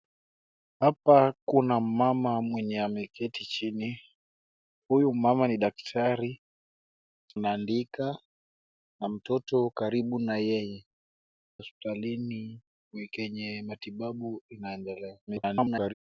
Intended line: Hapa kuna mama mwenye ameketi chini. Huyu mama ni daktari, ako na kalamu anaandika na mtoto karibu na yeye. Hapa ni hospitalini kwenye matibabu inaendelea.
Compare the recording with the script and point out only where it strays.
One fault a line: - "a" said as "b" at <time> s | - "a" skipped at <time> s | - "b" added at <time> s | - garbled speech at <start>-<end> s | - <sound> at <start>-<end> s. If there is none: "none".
- "ako na kalamu" skipped at 6.4 s
- "Hapa ni" skipped at 10.9 s
- garbled speech at 15.3-15.9 s